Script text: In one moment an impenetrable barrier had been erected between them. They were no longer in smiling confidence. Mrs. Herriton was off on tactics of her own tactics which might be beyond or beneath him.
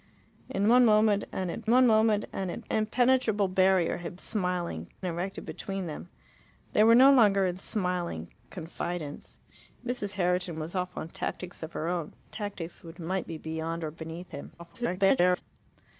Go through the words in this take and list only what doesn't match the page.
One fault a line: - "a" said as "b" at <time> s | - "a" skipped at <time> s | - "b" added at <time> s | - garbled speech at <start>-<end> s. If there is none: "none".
- "one moment an" added at 1.7 s
- "been" said as "smiling" at 4.1 s
- garbled speech at 14.6-15.4 s